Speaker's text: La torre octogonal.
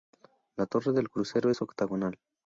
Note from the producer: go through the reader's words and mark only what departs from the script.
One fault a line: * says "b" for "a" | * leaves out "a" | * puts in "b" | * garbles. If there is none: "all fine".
* puts in "del crucero es"